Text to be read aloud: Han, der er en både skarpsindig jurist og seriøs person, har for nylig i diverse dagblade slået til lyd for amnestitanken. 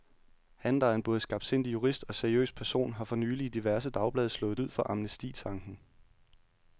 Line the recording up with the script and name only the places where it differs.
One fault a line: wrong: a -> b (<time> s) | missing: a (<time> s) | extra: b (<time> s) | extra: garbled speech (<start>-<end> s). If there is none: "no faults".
missing: til (4.6 s)